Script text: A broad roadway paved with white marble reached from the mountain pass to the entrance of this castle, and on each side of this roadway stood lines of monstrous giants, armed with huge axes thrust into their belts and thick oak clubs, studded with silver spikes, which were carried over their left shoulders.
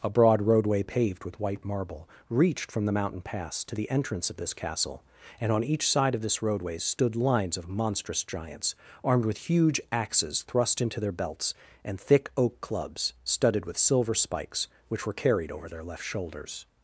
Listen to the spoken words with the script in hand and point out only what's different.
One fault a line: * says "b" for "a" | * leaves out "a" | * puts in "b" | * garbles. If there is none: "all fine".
all fine